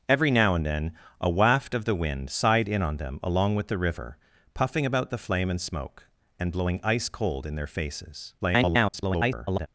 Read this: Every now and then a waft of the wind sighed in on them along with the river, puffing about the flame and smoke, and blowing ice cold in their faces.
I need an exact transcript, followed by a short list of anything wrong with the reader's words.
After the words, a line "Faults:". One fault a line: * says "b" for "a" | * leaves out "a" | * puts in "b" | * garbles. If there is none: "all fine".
Every now and then a waft of the wind sighed in on them along with the river, puffing about the flame and smoke, and blowing ice cold in their faces. [garbled]
Faults:
* garbles